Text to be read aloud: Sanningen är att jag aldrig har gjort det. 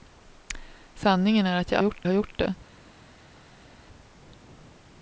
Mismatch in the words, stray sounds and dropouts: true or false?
true